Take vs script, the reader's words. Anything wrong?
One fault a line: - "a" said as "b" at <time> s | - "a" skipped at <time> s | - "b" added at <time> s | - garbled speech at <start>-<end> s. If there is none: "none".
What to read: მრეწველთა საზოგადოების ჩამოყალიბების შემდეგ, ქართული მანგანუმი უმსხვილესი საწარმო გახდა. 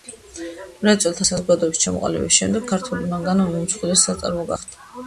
none